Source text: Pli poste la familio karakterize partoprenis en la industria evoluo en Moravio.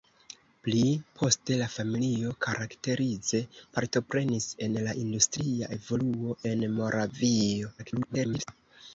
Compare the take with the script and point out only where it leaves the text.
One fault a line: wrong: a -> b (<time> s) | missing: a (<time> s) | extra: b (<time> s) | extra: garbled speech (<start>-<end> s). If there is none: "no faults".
extra: garbled speech (7.8-8.5 s)